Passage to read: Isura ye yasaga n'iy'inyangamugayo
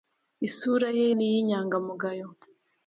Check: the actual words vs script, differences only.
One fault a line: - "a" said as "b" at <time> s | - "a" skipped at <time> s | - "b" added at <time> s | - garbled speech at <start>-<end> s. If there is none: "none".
- "yasaga" skipped at 1.1 s